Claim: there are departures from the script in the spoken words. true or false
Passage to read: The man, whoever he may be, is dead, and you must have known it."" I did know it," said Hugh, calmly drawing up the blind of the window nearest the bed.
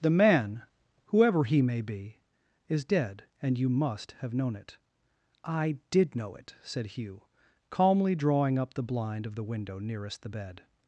false